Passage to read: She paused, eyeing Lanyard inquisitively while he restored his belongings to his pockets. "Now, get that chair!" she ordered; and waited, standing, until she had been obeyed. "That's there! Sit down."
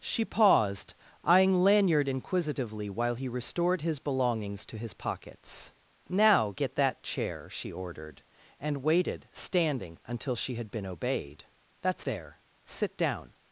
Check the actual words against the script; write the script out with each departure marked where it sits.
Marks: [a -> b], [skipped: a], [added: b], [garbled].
She paused, eyeing Lanyard inquisitively while he restored his belongings to his pockets. "Now, get that chair!" she ordered; and waited, standing, until she had been obeyed. "That's there! Sit down."